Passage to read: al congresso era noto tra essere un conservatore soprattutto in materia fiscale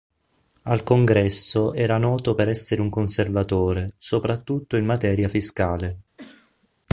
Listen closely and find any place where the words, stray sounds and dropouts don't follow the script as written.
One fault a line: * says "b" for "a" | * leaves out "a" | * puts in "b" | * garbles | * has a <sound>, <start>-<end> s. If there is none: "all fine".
* says "per" for "tra"
* has a cough, 6.2-6.7 s